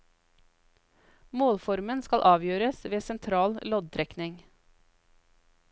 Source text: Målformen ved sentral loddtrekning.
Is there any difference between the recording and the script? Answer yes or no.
yes